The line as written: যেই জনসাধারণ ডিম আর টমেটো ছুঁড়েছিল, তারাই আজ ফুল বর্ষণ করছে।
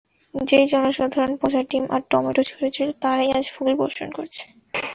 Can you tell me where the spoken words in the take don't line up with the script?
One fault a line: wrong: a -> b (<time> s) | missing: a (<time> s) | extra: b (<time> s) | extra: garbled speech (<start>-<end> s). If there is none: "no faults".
extra: পচা (1.4 s)